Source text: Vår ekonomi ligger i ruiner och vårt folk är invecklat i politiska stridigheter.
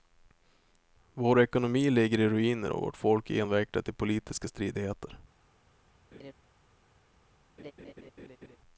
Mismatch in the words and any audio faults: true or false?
true